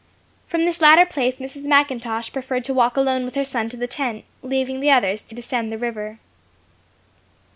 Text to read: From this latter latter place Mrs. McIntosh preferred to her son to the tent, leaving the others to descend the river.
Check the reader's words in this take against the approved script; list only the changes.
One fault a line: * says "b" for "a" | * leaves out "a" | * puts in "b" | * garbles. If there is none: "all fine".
* leaves out "latter"
* puts in "walk alone with"